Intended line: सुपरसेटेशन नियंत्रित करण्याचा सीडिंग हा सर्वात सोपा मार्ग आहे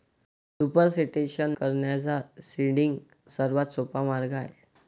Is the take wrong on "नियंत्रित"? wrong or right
wrong